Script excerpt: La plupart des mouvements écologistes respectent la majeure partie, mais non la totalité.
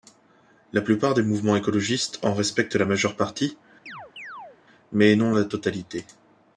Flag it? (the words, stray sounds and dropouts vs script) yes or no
yes